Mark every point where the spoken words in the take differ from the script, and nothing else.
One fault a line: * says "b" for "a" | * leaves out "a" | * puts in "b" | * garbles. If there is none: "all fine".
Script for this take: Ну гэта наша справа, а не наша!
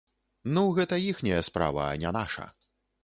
* says "іхняя" for "наша"